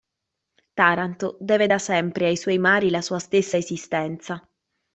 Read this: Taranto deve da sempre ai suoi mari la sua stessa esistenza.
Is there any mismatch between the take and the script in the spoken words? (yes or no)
no